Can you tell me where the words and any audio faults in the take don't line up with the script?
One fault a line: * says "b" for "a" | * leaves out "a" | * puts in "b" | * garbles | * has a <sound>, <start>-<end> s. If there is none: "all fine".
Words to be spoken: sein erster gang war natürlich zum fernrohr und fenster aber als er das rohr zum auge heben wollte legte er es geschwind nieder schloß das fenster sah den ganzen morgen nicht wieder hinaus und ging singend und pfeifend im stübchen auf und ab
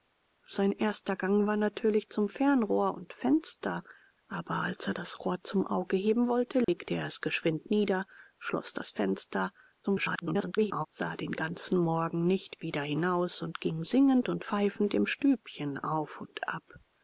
* has a dropout, 6.6-6.7 s
* garbles